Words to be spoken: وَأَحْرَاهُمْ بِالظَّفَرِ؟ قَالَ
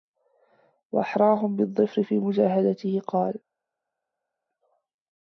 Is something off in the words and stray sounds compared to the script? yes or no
yes